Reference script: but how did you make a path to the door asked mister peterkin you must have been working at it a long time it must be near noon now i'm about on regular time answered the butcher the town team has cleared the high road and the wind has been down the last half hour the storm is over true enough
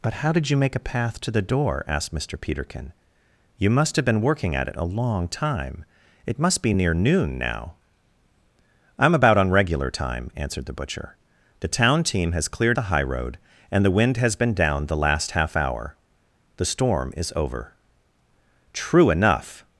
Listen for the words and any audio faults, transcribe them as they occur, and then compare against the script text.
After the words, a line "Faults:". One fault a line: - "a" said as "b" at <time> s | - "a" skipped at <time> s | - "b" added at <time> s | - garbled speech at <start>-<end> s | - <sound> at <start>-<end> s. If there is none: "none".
but how did you make a path to the door asked mister peterkin you must have been working at it a long time it must be near noon now i'm about on regular time answered the butcher the town team has cleared the high road and the wind has been down the last half hour the storm is over true enough
Faults:
none